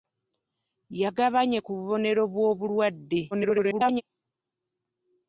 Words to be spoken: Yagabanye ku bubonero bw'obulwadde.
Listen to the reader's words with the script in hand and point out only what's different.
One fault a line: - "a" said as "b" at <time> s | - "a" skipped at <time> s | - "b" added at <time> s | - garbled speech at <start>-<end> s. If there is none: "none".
- garbled speech at 3.3-4.0 s